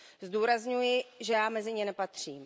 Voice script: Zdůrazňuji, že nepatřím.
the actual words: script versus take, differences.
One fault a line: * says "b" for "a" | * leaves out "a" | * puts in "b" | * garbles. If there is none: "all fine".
* puts in "já mezi ně"